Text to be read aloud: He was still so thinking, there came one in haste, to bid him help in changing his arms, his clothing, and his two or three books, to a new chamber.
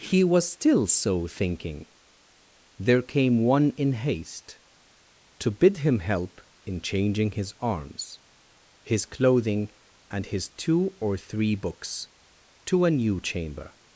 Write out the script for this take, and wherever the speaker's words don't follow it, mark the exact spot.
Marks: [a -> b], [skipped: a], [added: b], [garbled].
He was still so thinking, there came one in haste, to bid him help in changing his arms, his clothing, and his two or three books, to a new chamber.